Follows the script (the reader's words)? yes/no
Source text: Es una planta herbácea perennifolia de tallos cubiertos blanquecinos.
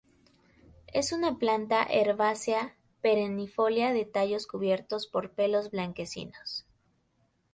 no